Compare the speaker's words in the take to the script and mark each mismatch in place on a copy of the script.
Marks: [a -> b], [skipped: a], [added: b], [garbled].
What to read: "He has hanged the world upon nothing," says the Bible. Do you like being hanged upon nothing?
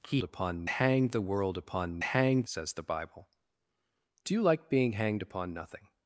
"He [has -> upon] hanged the world upon [nothing," -> hanged] says the Bible. Do you like being hanged upon nothing?